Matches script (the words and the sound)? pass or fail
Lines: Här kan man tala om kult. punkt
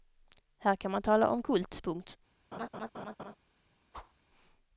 fail